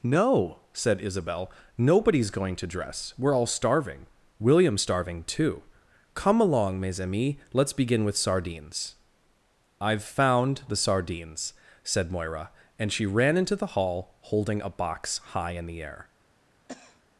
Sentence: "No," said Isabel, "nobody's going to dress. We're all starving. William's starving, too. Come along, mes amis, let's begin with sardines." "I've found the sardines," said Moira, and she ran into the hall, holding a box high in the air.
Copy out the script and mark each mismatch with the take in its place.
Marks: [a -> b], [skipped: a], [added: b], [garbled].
"No," said Isabel, "nobody's going to dress. We're all starving. William's starving, too. Come along, mes amis, let's begin with sardines." "I've found the sardines," said Moira, and she ran into the hall, holding a box high in the air.